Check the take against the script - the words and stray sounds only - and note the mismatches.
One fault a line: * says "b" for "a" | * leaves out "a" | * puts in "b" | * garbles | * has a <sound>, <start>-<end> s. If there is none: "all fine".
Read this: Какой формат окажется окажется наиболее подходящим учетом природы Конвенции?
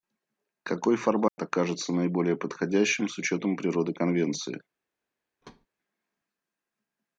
* has a dropout, 1.3-1.4 s
* leaves out "окажется"
* puts in "с"
* has a thud, 5.4-5.7 s